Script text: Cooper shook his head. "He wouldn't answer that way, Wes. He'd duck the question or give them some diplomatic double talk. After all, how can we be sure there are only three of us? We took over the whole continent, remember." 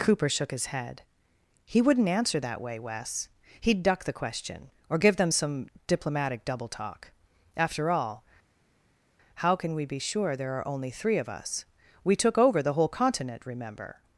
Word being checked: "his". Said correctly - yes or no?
yes